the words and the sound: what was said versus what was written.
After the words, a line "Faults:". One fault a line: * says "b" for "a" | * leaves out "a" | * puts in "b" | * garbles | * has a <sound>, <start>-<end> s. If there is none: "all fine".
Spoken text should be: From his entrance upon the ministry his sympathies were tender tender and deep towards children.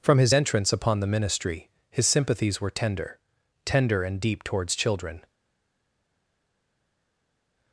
From his entrance upon the ministry his sympathies were tender tender and deep towards children.
Faults:
all fine